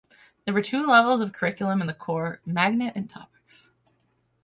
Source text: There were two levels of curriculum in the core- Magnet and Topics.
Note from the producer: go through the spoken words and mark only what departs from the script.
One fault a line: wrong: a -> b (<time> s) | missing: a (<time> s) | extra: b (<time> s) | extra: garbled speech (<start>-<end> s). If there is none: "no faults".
no faults